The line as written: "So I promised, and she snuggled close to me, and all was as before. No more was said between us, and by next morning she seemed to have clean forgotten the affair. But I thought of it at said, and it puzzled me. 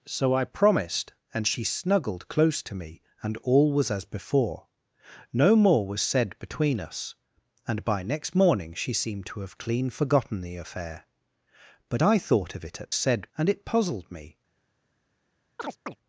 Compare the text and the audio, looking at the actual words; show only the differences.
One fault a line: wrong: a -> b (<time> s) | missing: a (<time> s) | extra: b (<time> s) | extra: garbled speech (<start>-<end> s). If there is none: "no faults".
no faults